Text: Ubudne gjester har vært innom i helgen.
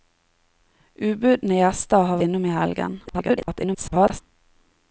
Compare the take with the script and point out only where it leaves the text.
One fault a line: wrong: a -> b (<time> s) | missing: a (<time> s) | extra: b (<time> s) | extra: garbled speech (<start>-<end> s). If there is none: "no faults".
missing: vært (2.2 s)
extra: garbled speech (3.1-4.2 s)